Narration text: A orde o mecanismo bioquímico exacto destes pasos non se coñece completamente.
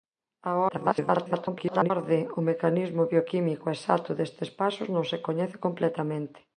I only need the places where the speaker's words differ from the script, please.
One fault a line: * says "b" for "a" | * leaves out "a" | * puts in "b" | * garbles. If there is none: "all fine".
* garbles